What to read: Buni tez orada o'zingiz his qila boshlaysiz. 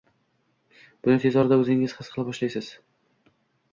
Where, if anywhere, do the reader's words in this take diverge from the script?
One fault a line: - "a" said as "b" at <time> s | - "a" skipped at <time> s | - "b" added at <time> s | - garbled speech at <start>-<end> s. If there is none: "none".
none